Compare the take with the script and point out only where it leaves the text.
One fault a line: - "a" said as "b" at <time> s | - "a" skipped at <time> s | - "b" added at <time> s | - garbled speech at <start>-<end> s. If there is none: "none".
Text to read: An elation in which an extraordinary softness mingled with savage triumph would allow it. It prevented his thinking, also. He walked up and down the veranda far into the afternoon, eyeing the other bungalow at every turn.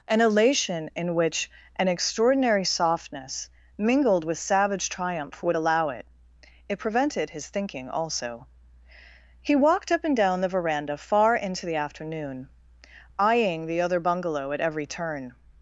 none